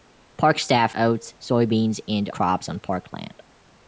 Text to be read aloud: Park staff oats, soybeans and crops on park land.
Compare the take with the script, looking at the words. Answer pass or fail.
pass